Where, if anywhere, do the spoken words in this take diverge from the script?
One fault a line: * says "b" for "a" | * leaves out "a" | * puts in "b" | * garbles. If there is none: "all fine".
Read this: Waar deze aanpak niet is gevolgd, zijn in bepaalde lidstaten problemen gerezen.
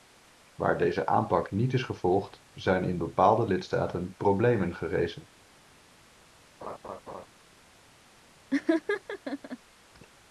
all fine